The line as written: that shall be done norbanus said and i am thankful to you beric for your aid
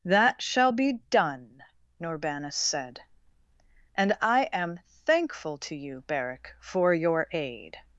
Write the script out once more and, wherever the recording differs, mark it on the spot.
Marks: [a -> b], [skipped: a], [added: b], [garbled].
that shall be done norbanus said and i am thankful to you beric for your aid